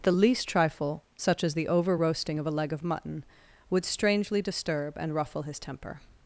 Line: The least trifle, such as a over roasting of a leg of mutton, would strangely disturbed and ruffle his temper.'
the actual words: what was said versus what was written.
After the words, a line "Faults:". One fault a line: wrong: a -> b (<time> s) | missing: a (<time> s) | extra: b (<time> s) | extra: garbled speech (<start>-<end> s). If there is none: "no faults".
The least trifle, such as the over roasting of a leg of mutton, would strangely disturb and ruffle his temper.'
Faults:
wrong: a -> the (1.6 s)
wrong: disturbed -> disturb (4.4 s)